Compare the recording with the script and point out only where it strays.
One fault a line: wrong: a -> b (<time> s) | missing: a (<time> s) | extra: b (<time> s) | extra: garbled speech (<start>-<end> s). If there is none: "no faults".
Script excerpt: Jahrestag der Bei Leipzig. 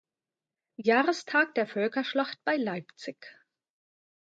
extra: Völkerschlacht (1.7 s)